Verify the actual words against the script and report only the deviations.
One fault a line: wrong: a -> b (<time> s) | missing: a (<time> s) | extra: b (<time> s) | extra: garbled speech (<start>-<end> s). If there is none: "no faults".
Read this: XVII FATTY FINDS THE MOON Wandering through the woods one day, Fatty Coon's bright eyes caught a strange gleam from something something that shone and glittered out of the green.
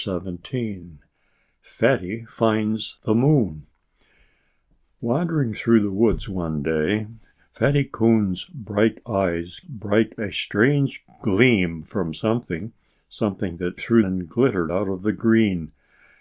wrong: caught -> bright (9.6 s)
wrong: shone -> through (13.8 s)